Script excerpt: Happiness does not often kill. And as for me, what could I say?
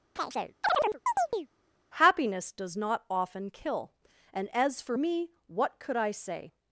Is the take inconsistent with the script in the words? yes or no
no